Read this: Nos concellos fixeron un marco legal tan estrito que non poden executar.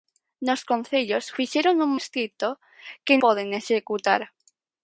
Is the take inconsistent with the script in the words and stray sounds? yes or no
yes